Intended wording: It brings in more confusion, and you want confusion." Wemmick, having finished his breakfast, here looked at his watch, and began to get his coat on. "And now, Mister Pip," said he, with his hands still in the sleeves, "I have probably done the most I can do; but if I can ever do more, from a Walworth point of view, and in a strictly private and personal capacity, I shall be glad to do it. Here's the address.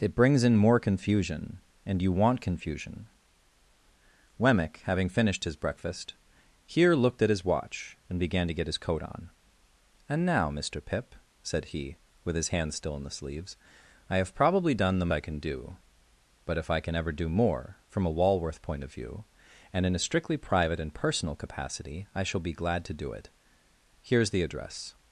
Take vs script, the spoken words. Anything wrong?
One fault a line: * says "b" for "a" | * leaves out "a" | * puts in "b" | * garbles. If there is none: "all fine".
* leaves out "most"